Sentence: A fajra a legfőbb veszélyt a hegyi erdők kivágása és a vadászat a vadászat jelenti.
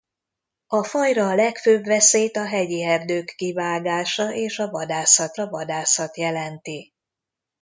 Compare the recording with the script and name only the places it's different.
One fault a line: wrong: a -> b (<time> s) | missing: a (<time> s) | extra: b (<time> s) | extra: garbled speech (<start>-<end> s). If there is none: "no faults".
no faults